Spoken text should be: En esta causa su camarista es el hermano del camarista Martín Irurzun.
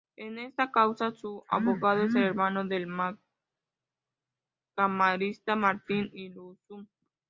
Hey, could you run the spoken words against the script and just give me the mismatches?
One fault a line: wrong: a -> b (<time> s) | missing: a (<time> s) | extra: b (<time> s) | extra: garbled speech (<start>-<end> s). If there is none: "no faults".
wrong: camarista -> abogado (1.5 s)